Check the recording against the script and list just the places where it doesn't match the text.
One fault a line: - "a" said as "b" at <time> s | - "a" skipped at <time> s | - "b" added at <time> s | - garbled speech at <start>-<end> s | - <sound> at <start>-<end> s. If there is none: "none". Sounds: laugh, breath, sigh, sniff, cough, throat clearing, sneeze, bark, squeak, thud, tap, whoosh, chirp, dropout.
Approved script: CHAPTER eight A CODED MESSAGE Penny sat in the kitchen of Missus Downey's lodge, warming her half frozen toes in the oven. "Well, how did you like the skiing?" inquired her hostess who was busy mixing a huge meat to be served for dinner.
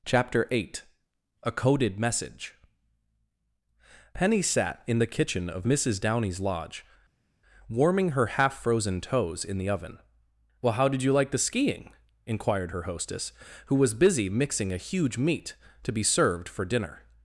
none